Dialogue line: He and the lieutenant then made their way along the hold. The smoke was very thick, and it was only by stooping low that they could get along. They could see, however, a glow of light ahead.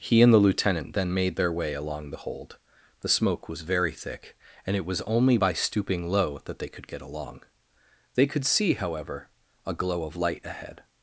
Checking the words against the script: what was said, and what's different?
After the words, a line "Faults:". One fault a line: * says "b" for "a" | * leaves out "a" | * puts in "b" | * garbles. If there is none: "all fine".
He and the lieutenant then made their way along the hold. The smoke was very thick, and it was only by stooping low that they could get along. They could see, however, a glow of light ahead.
Faults:
all fine